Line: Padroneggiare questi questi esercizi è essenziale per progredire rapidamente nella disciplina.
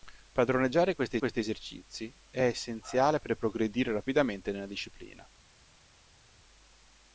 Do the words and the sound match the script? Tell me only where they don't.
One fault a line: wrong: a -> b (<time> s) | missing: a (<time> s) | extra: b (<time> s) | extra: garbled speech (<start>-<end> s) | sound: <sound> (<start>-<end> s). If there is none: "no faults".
no faults